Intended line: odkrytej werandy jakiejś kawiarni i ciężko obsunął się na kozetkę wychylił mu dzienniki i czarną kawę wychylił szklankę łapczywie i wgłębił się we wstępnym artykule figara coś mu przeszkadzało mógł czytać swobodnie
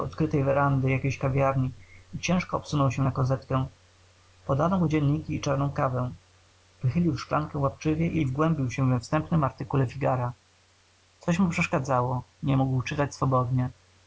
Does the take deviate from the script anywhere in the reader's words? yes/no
yes